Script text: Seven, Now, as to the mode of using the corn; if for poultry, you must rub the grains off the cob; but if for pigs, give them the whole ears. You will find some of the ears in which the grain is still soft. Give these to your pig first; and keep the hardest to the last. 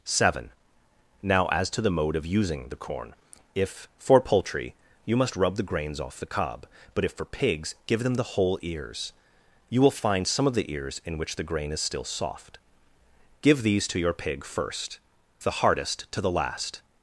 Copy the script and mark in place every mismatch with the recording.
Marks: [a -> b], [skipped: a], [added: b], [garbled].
Seven, Now, as to the mode of using the corn; if for poultry, you must rub the grains off the cob; but if for pigs, give them the whole ears. You will find some of the ears in which the grain is still soft. Give these to your pig first; [skipped: and keep] the hardest to the last.